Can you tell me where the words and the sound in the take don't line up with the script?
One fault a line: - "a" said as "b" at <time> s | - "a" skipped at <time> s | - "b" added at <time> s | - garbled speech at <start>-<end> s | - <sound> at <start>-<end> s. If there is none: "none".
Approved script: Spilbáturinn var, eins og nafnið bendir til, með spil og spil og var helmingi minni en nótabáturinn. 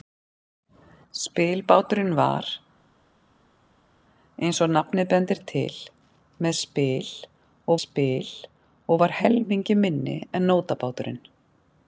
none